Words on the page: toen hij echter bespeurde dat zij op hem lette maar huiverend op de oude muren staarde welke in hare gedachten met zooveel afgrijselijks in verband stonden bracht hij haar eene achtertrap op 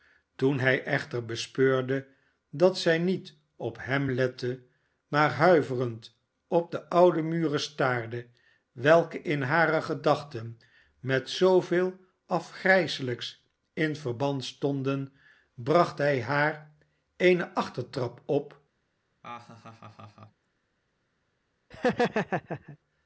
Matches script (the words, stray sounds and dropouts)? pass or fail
fail